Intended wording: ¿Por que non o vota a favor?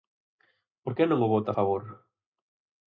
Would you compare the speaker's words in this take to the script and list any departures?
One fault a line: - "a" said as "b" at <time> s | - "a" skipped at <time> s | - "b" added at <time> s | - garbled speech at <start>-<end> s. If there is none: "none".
none